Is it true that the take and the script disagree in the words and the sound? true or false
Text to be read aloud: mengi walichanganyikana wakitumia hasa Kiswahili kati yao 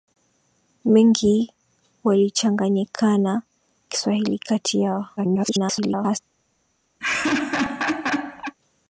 true